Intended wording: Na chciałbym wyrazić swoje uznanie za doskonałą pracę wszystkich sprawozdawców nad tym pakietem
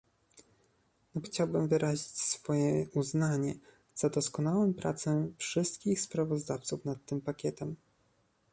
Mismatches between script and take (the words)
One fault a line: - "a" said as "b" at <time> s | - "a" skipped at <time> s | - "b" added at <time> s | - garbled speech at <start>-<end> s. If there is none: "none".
none